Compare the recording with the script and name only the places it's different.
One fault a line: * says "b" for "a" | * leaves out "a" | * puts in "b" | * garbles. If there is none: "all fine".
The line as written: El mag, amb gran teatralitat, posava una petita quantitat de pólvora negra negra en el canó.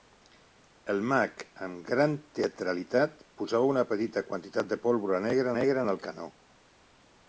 all fine